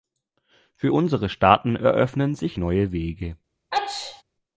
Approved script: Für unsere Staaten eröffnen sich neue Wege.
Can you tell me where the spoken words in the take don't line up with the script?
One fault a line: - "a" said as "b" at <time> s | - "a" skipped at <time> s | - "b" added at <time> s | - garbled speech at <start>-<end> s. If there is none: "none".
none